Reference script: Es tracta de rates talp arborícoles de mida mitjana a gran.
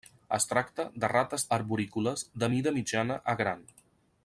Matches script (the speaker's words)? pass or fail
fail